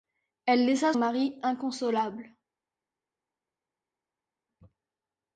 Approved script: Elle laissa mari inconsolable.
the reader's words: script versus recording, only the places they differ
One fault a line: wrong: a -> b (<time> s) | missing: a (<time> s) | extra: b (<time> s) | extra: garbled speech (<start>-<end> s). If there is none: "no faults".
no faults